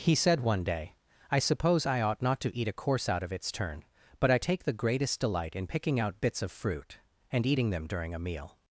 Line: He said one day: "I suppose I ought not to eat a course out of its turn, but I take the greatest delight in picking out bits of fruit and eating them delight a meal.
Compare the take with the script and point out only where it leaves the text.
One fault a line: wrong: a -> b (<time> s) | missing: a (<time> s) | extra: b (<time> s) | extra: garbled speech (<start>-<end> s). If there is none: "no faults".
wrong: delight -> during (7.9 s)